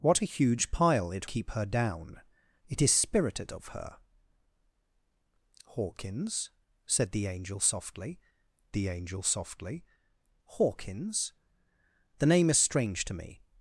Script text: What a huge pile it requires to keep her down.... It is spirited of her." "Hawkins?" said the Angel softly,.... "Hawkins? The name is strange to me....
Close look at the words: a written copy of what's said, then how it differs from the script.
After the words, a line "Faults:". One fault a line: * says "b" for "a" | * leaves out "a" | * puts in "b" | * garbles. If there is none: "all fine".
What a huge pile it keep her down.... It is spirited of her." "Hawkins?" said the Angel softly the Angel softly,.... "Hawkins? The name is strange to me....
Faults:
* leaves out "requires to"
* puts in "the Angel softly"